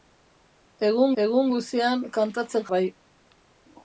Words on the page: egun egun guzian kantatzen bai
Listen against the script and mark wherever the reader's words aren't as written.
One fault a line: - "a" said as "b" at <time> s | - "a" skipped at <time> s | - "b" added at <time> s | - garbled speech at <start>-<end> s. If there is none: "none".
none